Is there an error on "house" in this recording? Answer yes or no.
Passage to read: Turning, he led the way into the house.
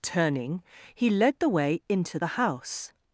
no